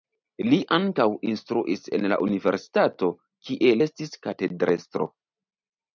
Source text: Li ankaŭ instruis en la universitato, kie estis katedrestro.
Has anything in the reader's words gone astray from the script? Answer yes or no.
no